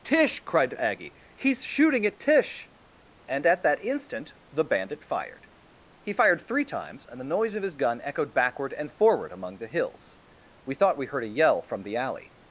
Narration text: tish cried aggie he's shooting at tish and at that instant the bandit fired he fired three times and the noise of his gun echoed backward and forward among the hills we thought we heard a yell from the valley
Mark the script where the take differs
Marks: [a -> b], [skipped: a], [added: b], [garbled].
tish cried aggie he's shooting at tish and at that instant the bandit fired he fired three times and the noise of his gun echoed backward and forward among the hills we thought we heard a yell from the [valley -> alley]